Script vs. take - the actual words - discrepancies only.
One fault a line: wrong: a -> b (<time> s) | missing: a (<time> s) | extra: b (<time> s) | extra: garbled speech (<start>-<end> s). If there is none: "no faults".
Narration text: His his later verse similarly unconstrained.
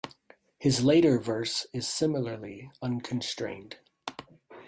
missing: his (0.8 s)
extra: is (1.8 s)